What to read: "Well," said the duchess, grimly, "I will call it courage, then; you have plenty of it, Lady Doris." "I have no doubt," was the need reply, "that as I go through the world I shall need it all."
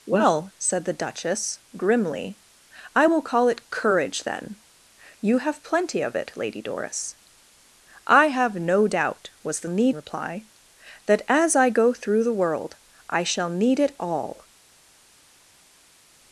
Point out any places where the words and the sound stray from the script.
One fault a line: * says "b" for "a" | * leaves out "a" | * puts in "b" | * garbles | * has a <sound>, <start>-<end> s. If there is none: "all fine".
all fine